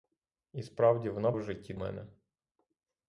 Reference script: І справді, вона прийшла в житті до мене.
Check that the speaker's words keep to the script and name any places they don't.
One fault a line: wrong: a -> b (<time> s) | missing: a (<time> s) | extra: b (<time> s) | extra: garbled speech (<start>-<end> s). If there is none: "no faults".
missing: прийшла (1.3 s)
missing: до (1.7 s)